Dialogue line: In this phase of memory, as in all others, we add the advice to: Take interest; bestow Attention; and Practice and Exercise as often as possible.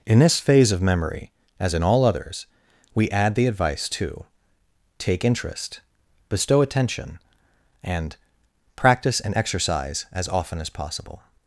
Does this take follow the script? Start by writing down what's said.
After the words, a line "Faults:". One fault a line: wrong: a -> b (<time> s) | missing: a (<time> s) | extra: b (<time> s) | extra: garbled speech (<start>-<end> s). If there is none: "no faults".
In this phase of memory, as in all others, we add the advice to: Take interest; bestow Attention; and Practice and Exercise as often as possible.
Faults:
no faults